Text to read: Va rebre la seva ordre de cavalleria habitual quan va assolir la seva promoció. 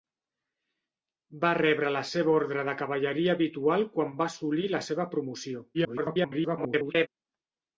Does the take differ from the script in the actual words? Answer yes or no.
yes